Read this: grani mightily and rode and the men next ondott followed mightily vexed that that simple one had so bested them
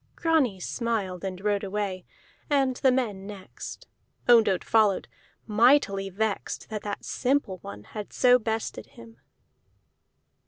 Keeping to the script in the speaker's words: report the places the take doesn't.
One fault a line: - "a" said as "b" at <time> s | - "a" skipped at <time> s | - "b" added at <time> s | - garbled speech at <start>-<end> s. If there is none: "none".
- "mightily" said as "smiled" at 0.6 s
- "away" added at 1.6 s
- "them" said as "him" at 8.9 s